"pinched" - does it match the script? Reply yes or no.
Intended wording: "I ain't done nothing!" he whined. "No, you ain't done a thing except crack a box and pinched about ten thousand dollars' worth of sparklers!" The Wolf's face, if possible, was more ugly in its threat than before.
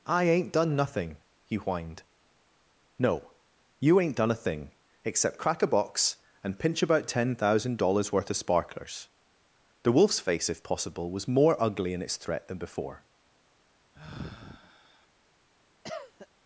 no